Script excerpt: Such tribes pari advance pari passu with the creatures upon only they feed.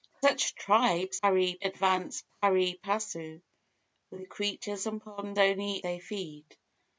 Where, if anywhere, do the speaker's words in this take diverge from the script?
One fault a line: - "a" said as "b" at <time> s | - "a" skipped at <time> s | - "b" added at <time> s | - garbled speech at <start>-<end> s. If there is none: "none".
none